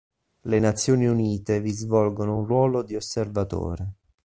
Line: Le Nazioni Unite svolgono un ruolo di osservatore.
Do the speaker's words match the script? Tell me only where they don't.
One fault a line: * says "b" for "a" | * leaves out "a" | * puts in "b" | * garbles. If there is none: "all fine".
* puts in "vi"